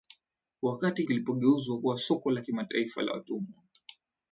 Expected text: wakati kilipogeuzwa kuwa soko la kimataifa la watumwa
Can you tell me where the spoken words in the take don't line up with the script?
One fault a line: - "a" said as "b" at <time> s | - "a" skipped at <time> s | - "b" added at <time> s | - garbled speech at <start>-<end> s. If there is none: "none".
none